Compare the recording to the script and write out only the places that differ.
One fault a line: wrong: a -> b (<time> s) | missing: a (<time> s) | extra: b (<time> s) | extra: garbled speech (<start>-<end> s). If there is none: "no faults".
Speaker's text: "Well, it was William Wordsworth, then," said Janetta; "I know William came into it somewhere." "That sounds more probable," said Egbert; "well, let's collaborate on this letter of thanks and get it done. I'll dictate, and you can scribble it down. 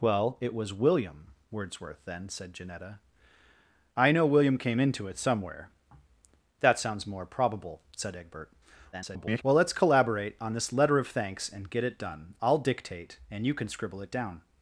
extra: garbled speech (8.9-9.4 s)